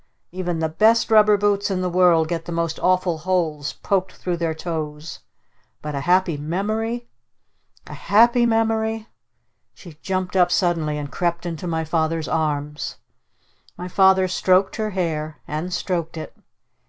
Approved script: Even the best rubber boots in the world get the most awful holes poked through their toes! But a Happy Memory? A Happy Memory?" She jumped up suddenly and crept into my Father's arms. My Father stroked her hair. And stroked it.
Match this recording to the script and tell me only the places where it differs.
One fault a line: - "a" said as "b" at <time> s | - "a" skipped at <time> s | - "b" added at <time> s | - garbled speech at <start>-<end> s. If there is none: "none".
none